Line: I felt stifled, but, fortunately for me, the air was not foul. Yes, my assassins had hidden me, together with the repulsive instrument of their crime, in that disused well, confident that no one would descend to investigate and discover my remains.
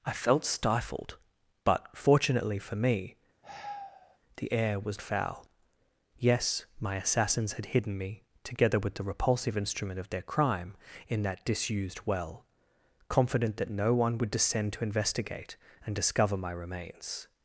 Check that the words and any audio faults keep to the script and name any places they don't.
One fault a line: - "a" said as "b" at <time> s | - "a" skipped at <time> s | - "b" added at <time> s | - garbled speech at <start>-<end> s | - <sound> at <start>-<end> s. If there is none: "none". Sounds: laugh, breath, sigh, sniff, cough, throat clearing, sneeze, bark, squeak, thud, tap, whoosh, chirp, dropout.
- sigh at 3.4-4.2 s
- "not" skipped at 5.0 s